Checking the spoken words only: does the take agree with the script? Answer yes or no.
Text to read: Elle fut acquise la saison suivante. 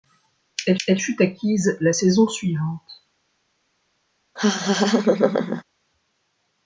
no